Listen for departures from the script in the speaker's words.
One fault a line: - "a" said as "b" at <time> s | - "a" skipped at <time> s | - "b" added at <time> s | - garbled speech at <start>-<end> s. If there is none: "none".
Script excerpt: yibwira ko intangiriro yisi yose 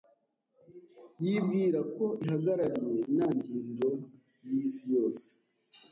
- "ihagarariye" added at 2.2 s